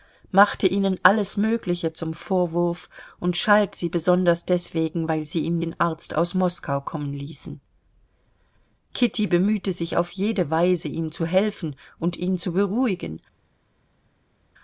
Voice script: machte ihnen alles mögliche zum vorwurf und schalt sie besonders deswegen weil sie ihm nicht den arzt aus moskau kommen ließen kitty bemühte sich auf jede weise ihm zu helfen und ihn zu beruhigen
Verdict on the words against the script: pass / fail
fail